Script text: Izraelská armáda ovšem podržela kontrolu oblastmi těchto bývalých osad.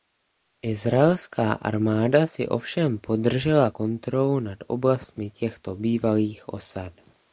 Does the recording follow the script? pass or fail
fail